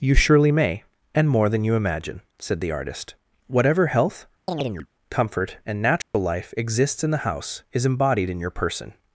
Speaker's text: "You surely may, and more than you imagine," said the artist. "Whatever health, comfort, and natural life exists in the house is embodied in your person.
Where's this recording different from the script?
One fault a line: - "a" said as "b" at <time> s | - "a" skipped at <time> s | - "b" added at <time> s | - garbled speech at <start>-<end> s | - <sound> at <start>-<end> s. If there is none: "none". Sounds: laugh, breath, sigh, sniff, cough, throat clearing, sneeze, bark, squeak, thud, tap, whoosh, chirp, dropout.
- chirp at 4.5-4.9 s
- dropout at 6.0-6.1 s